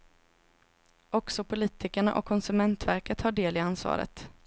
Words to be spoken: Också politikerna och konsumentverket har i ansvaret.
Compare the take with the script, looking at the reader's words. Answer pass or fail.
fail